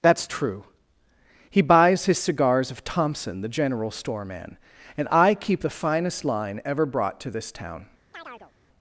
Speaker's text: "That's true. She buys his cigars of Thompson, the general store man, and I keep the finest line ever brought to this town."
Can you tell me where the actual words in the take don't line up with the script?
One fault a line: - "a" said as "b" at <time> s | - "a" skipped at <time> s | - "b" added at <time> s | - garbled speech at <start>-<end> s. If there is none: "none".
- "She" said as "He" at 1.5 s